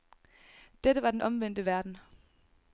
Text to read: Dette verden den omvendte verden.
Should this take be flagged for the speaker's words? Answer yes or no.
yes